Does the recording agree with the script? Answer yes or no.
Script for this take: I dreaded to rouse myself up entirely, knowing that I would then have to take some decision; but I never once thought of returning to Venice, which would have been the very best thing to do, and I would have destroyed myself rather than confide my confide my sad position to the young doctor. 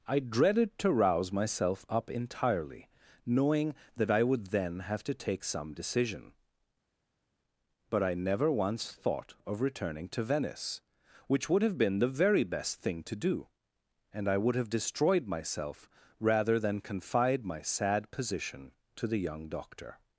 no